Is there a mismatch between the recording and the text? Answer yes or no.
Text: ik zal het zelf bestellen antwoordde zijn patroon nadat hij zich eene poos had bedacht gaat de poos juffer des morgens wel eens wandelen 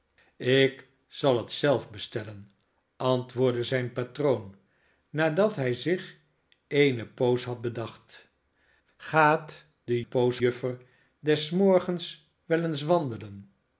no